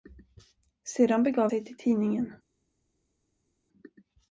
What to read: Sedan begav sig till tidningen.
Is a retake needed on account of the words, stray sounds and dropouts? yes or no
no